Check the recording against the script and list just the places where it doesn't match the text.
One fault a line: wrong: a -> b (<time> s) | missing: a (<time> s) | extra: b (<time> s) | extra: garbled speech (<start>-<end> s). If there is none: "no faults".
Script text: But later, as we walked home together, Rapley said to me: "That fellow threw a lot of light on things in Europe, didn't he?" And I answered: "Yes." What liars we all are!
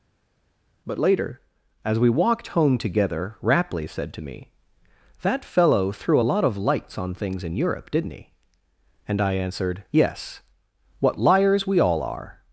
wrong: light -> lights (6.6 s)